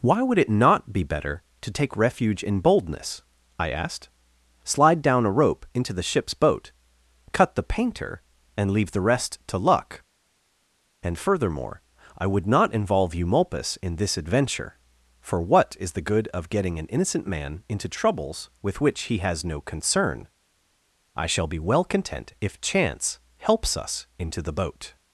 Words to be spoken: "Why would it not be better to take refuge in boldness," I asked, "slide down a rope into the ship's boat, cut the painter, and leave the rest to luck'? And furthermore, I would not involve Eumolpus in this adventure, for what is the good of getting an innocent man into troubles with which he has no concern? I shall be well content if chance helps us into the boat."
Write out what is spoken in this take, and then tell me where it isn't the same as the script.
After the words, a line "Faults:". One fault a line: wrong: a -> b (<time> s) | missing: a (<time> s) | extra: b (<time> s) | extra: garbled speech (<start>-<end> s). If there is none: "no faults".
"Why would it not be better to take refuge in boldness," I asked, "slide down a rope into the ship's boat, cut the painter, and leave the rest to luck'? And furthermore, I would not involve Eumolpus in this adventure, for what is the good of getting an innocent man into troubles with which he has no concern? I shall be well content if chance helps us into the boat."
Faults:
no faults